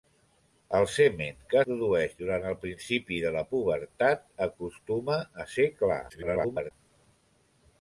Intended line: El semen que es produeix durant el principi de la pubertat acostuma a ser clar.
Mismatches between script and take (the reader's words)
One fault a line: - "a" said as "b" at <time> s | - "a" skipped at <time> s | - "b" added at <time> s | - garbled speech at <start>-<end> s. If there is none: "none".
- "es" skipped at 1.6 s
- garbled speech at 6.1-6.7 s